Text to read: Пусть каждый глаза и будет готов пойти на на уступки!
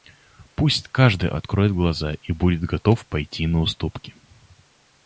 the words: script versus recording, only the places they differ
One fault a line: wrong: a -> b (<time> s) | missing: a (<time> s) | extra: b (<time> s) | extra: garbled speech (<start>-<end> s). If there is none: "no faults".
extra: откроет (1.3 s)
missing: на (3.6 s)